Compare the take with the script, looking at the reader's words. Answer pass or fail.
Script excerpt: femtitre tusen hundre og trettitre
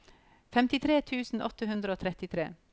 fail